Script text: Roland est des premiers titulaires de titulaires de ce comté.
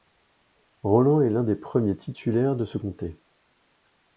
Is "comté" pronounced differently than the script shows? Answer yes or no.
no